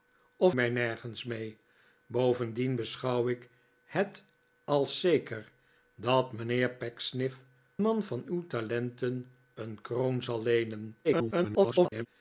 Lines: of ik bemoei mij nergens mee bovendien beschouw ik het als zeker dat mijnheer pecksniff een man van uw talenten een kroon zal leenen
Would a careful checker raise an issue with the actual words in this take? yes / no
yes